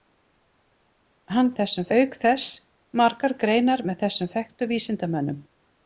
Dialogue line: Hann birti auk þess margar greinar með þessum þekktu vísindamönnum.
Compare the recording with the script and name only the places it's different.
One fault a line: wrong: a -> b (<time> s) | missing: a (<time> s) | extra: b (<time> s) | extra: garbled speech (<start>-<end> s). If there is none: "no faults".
wrong: birti -> þessum (1.6 s)